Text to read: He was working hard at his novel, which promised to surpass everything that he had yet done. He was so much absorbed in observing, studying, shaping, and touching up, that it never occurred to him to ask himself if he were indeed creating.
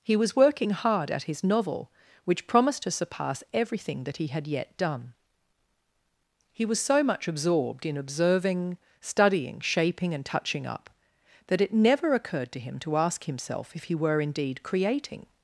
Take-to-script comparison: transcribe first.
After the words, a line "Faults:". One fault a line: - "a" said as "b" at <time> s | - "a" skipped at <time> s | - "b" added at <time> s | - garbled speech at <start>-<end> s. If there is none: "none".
He was working hard at his novel, which promised to surpass everything that he had yet done. He was so much absorbed in observing, studying, shaping, and touching up, that it never occurred to him to ask himself if he were indeed creating.
Faults:
none